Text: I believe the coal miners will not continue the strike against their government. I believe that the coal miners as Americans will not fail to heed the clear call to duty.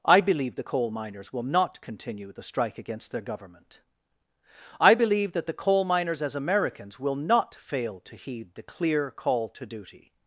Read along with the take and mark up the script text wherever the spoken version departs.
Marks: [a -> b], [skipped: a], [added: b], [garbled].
I believe the coal miners will not continue the strike against their government. I believe that the coal miners as Americans will not fail to heed the clear call to duty.